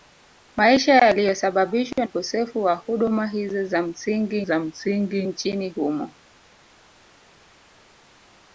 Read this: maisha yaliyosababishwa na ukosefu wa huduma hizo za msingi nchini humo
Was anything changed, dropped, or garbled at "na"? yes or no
yes